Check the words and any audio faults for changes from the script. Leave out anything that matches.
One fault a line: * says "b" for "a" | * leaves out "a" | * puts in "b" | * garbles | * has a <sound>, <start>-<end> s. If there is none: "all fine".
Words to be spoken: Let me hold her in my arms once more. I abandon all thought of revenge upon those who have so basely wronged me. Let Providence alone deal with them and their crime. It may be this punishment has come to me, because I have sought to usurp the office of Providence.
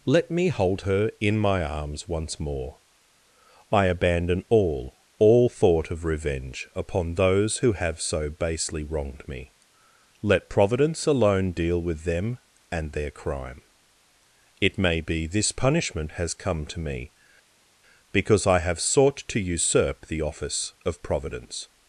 * puts in "all"